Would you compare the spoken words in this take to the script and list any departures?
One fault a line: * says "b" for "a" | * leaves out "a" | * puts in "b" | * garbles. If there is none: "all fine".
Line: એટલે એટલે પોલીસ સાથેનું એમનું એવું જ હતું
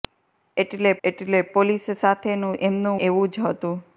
all fine